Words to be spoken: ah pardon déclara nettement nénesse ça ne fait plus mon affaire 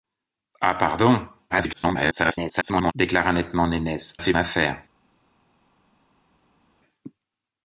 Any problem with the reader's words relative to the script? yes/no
yes